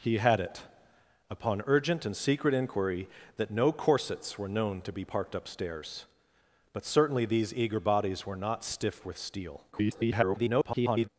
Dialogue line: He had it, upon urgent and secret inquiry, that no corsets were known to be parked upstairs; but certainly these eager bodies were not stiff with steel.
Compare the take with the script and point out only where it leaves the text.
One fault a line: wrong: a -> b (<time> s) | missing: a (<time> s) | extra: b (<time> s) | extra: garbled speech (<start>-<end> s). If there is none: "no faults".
extra: garbled speech (9.7-11.1 s)